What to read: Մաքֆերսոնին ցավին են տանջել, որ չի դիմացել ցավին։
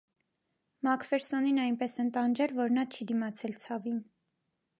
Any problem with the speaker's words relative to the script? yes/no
yes